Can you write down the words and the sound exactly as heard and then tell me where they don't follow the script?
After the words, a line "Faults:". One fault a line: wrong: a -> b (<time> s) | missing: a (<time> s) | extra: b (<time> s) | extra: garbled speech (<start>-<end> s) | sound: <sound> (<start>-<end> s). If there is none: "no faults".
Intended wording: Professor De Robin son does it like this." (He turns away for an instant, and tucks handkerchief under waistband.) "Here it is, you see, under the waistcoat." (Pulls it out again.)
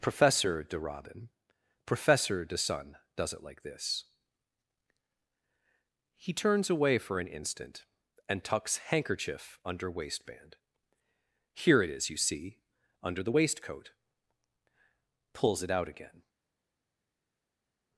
Professor De Robin professor de sun does it like this." (He turns away for an instant, and tucks handkerchief under waistband.) "Here it is, you see, under the waistcoat." (Pulls it out again.)
Faults:
wrong: son -> professor de sun (1.9 s)